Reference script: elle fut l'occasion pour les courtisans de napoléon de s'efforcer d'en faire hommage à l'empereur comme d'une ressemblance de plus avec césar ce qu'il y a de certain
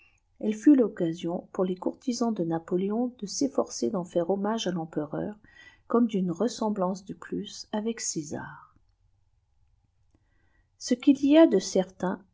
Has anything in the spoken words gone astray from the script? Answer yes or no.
no